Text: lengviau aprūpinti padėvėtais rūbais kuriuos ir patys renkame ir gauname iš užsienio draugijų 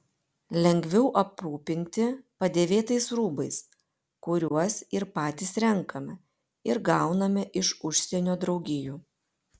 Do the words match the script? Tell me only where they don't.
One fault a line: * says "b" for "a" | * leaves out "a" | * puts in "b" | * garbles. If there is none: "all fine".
all fine